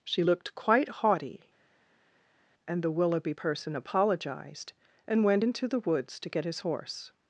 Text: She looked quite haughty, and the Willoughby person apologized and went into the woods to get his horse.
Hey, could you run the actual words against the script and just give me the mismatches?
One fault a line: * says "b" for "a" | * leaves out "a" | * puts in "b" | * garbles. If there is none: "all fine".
all fine